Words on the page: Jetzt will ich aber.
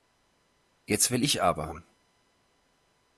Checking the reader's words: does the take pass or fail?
pass